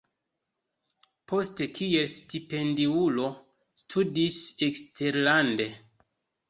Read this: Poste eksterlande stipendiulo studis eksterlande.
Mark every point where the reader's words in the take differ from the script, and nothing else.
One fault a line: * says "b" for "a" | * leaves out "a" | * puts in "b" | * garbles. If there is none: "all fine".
* says "kiel" for "eksterlande"